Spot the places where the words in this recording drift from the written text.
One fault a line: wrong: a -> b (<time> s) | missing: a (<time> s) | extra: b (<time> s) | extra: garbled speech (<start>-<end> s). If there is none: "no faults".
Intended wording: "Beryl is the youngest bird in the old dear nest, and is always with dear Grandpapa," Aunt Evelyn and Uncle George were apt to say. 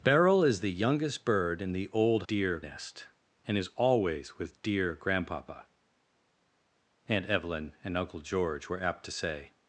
no faults